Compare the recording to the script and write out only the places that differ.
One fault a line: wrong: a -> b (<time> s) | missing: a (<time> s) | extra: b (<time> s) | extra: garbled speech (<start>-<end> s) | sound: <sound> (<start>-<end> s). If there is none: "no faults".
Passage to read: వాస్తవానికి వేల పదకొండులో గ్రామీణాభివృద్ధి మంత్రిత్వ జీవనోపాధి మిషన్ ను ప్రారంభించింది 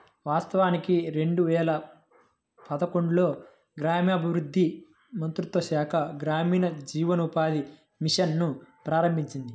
extra: రెండు (1.1 s)
extra: శాఖ గ్రామీణ (5.6 s)